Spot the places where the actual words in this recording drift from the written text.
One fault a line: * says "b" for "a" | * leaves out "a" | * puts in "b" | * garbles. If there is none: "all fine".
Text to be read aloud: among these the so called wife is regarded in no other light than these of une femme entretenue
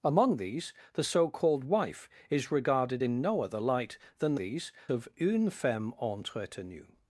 all fine